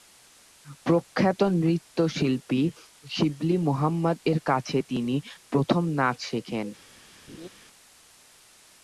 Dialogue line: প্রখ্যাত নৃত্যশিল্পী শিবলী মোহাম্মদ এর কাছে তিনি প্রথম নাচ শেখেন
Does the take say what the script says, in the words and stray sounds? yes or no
no